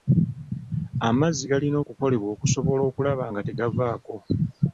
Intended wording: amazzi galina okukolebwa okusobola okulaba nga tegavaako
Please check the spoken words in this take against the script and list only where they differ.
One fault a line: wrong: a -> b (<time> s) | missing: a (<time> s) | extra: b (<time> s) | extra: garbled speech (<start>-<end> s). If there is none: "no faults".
no faults